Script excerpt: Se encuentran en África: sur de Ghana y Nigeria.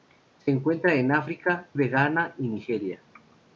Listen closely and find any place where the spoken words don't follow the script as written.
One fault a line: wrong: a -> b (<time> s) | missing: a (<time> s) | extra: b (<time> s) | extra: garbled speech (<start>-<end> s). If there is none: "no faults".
missing: sur (1.7 s)